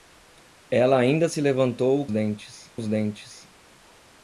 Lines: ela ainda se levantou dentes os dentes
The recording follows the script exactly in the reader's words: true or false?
true